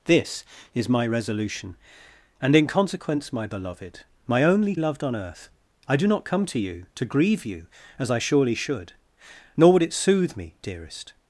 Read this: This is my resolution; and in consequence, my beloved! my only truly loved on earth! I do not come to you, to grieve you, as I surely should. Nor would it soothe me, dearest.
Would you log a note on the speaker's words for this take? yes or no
yes